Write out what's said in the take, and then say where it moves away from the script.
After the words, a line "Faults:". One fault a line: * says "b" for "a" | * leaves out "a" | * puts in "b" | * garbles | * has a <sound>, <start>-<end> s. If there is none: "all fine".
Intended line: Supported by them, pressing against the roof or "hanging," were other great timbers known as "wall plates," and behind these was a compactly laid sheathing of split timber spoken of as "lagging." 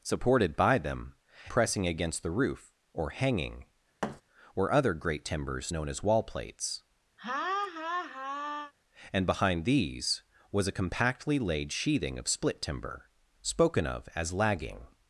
Supported by them, pressing against the roof or "hanging," were other great timbers known as "wall plates," and behind these was a compactly laid sheathing of split timber spoken of as "lagging."
Faults:
* has a thud, 4.0-4.2 s
* has a laugh, 7.2-8.7 s